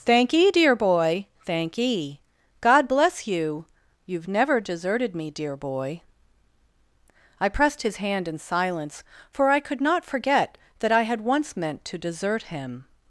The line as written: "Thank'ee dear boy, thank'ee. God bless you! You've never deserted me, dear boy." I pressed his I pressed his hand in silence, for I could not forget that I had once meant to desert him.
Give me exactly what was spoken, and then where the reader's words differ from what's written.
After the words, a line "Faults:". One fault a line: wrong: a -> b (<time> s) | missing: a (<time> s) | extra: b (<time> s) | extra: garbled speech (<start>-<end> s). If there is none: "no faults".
"Thank'ee dear boy, thank'ee. God bless you! You've never deserted me, dear boy." I pressed his hand in silence, for I could not forget that I had once meant to desert him.
Faults:
missing: I pressed his (8.0 s)